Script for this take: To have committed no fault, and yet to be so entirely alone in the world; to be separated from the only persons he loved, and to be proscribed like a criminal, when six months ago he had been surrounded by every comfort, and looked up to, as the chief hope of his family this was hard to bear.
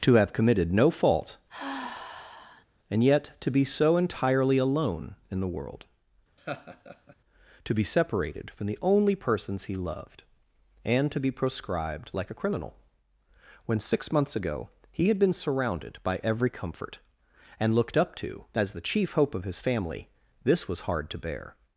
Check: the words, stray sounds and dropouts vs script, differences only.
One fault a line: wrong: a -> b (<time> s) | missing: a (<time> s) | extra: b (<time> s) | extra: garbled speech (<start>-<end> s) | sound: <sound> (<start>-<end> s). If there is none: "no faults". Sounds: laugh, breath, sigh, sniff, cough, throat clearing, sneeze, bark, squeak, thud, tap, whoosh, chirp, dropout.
sound: sigh (1.5-2.6 s)
sound: laugh (6.4-7.2 s)